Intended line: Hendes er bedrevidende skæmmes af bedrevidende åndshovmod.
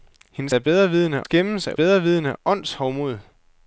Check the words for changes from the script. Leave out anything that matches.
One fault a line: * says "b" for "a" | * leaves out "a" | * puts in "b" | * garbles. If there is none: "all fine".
all fine